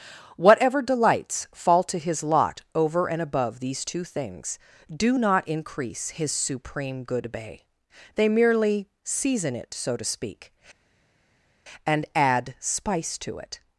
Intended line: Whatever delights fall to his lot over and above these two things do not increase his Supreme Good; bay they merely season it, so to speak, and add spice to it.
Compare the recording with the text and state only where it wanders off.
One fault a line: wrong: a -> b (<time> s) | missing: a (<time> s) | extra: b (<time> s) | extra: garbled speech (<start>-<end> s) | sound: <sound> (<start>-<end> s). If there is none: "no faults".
no faults